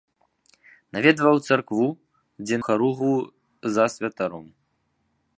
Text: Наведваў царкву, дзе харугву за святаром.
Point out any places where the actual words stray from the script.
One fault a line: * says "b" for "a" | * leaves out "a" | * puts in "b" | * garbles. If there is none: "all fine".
all fine